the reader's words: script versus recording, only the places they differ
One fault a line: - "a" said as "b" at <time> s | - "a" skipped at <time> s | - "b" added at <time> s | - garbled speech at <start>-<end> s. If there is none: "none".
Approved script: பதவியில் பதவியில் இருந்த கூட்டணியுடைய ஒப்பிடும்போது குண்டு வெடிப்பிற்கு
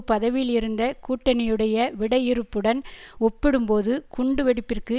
- "பதவியில்" skipped at 0.5 s
- "விடையிறுப்புடன்" added at 2.0 s